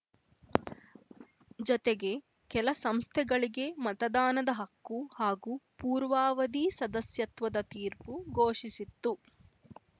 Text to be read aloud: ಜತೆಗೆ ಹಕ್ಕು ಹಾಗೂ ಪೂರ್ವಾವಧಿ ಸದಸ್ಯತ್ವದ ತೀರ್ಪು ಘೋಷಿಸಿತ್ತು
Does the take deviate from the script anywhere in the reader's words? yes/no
yes